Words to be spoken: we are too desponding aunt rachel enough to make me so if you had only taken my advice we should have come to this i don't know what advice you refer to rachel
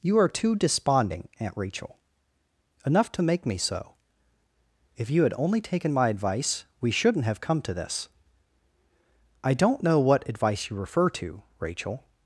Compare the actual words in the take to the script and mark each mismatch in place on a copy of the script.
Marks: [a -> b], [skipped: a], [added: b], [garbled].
[we -> you] are too desponding aunt rachel enough to make me so if you had only taken my advice we [should -> shouldn't] have come to this i don't know what advice you refer to rachel